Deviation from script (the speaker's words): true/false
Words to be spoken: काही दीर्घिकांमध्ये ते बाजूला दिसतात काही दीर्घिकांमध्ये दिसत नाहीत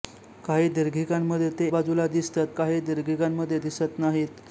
false